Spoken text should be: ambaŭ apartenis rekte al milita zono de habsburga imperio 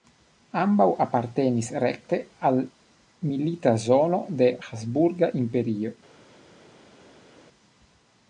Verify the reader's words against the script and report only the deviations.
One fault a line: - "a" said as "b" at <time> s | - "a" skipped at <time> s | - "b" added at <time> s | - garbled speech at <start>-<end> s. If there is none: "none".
none